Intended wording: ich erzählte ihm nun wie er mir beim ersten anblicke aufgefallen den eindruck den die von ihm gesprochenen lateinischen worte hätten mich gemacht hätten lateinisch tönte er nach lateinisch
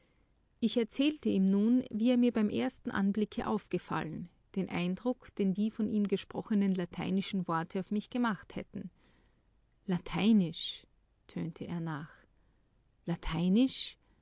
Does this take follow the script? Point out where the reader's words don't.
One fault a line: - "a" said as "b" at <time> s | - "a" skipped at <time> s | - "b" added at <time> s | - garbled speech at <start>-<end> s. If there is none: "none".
- "hätten" said as "auf" at 7.8 s